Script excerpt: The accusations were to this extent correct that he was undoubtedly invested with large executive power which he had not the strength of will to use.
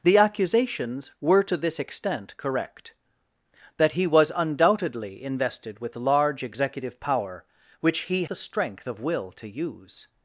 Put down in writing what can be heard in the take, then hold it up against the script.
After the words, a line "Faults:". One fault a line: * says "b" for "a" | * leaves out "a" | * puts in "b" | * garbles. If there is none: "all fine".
The accusations were to this extent correct that he was undoubtedly invested with large executive power which he the strength of will to use.
Faults:
* leaves out "had not"